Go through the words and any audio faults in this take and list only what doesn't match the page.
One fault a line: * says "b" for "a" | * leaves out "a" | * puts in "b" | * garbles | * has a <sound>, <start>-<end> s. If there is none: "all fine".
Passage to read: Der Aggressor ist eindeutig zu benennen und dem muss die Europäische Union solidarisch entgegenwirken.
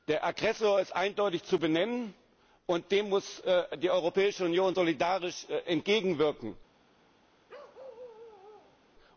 * has a bark, 7.5-8.8 s